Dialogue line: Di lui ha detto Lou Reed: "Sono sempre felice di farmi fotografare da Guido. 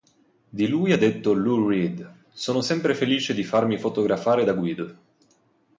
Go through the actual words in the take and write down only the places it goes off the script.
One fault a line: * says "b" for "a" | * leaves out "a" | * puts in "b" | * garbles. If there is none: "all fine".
all fine